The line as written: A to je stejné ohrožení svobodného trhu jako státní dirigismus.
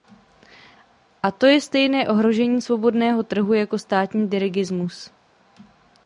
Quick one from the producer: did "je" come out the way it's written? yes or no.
yes